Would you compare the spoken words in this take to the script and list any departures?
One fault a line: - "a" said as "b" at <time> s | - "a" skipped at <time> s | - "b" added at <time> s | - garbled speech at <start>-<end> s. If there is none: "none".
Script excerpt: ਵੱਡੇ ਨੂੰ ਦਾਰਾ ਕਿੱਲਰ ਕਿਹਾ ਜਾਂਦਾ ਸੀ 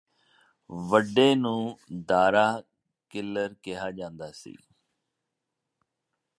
none